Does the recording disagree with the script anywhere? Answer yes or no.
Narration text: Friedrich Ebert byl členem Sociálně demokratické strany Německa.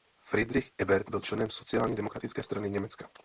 no